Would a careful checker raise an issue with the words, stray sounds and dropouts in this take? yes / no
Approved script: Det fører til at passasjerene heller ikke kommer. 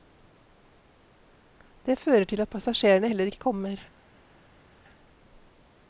no